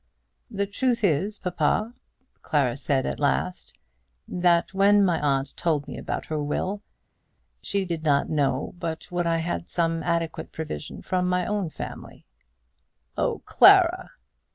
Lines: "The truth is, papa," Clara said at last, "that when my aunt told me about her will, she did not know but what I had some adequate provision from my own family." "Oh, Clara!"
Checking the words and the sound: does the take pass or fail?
pass